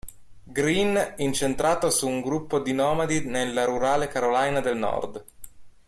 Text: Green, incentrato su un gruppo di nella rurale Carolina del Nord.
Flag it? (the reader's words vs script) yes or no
yes